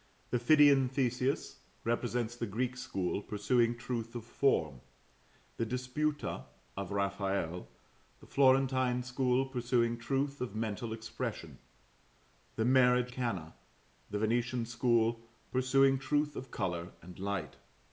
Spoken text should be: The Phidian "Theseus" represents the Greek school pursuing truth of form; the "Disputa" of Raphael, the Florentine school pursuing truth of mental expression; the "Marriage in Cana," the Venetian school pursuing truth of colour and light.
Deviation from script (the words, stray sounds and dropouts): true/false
true